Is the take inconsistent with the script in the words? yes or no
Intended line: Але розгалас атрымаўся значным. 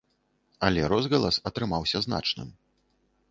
no